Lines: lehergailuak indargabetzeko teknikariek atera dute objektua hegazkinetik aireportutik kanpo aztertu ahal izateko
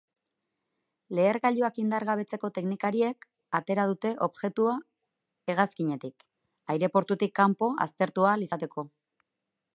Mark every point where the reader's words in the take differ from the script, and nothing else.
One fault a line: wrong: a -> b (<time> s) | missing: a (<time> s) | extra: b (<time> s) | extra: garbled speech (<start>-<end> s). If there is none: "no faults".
no faults